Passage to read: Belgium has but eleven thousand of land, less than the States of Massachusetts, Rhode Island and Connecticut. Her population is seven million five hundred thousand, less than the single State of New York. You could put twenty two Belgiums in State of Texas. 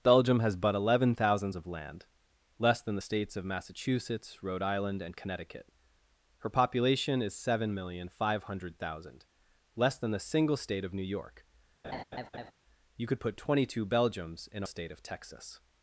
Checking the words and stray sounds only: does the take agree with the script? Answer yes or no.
no